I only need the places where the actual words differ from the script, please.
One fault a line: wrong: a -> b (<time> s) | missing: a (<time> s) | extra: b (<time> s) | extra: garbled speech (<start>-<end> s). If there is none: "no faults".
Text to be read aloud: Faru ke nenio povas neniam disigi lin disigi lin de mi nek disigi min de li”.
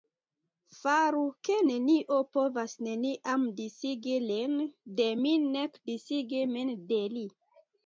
missing: disigi lin (4.6 s)